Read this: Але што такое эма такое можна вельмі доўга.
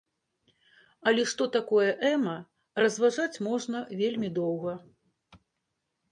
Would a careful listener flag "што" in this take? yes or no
no